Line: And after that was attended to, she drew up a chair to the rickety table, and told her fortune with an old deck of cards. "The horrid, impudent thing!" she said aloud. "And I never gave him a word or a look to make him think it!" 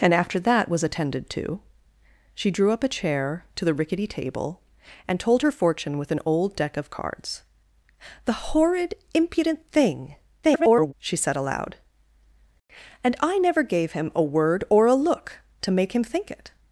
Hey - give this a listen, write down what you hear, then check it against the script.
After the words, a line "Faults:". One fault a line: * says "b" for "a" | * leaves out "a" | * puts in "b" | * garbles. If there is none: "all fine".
And after that was attended to, she drew up a chair to the rickety table, and told her fortune with an old deck of cards. "The horrid, impudent thing!" [garbled] she said aloud. "And I never gave him a word or a look to make him think it!"
Faults:
* garbles